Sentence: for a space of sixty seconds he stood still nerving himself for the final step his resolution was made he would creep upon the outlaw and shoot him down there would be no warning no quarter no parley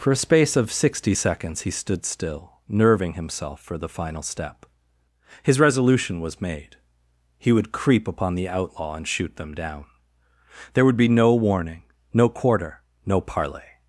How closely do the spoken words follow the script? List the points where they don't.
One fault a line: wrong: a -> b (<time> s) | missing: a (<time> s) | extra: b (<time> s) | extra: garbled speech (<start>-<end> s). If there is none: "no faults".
wrong: him -> them (9.4 s)